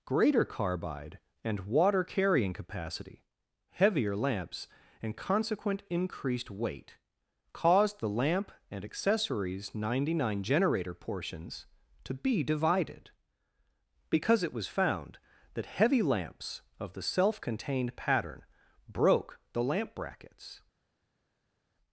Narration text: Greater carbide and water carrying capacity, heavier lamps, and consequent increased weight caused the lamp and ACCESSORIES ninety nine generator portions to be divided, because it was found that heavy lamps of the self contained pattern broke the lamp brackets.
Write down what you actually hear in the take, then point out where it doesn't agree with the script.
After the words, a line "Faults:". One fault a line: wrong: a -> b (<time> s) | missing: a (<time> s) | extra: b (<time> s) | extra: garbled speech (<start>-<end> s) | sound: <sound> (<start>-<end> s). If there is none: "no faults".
Greater carbide and water carrying capacity, heavier lamps, and consequent increased weight caused the lamp and ACCESSORIES ninety nine generator portions to be divided, because it was found that heavy lamps of the self contained pattern broke the lamp brackets.
Faults:
no faults